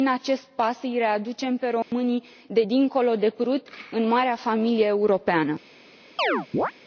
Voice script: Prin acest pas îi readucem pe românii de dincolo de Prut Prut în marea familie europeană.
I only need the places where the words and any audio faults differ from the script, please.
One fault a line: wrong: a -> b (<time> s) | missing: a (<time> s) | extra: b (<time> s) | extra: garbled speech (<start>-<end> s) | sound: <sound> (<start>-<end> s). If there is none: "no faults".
sound: dropout (1.8-1.9 s)
missing: Prut (3.7 s)
sound: chirp (6.2-6.7 s)